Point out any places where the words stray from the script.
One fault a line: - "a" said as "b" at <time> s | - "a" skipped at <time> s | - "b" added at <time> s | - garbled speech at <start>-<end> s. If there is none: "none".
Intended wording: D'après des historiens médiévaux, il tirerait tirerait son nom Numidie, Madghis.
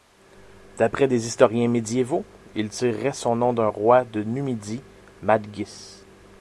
- "tirerait" skipped at 3.1 s
- "d'un roi de" added at 3.5 s